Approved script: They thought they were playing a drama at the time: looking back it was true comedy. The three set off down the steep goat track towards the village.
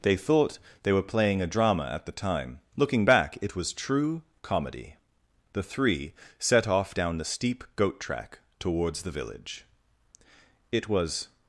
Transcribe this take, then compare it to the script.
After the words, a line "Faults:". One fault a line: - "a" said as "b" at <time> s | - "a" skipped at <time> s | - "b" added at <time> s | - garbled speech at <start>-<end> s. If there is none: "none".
They thought they were playing a drama at the time: looking back it was true comedy. The three set off down the steep goat track towards the village. It was
Faults:
- "It was" added at 10.7 s